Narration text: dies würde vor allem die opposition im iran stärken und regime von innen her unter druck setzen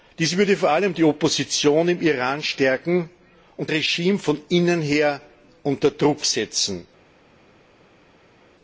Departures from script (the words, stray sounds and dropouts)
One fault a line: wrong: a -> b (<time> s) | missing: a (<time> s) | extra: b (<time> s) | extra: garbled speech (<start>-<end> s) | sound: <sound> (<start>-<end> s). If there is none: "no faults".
no faults